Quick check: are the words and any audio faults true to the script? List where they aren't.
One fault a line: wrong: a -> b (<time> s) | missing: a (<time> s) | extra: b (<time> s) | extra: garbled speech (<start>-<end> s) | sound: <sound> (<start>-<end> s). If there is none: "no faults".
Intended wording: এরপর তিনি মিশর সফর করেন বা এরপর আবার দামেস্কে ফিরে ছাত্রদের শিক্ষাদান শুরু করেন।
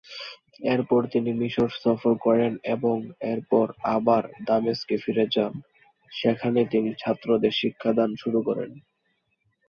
wrong: বা -> এবং (2.8 s)
extra: যান সেখানে তিনি (5.3 s)